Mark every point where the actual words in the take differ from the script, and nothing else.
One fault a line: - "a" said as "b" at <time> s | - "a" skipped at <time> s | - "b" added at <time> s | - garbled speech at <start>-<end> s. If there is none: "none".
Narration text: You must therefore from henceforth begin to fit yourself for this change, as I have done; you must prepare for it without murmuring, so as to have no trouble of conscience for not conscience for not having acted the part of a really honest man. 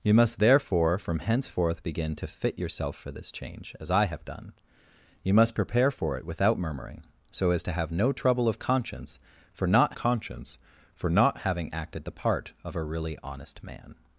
none